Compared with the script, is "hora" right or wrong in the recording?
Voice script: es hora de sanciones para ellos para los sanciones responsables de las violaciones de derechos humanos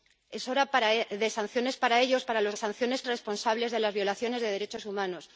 right